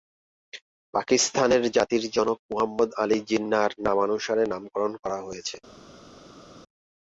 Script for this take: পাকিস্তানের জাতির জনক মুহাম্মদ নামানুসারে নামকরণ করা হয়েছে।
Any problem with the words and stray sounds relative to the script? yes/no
yes